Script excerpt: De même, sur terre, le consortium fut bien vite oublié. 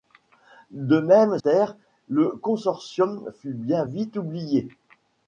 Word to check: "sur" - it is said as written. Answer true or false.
false